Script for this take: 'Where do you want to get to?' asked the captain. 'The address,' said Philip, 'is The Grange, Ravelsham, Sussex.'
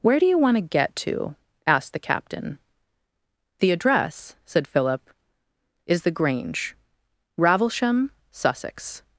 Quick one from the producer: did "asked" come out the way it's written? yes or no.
yes